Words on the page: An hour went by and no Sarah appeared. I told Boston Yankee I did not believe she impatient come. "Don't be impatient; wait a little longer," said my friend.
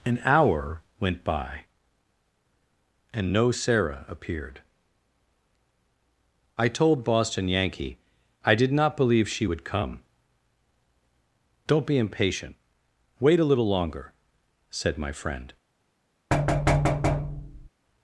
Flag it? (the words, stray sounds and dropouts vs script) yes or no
yes